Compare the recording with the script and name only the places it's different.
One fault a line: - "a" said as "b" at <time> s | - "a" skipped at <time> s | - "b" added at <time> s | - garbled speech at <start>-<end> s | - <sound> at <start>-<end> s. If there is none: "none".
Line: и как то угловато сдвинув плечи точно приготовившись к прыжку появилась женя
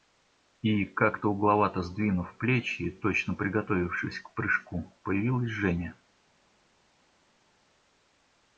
none